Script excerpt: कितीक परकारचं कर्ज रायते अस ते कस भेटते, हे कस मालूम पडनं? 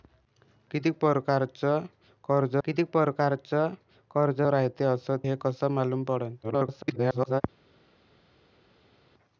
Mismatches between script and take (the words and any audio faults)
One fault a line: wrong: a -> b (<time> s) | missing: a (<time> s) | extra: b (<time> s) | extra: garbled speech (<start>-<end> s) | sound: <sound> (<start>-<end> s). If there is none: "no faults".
wrong: रायते अस ते कस भेटते -> कितीक परकारचं कर्ज रायते अस (2.6 s)
extra: garbled speech (6.4-7.4 s)